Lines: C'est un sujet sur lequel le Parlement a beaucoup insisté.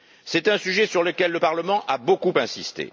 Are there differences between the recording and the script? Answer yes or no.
no